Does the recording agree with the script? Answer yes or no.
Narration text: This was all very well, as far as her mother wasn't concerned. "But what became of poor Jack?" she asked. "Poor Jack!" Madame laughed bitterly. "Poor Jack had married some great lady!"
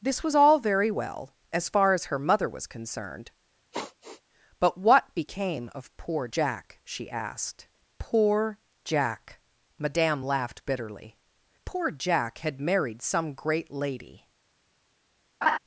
no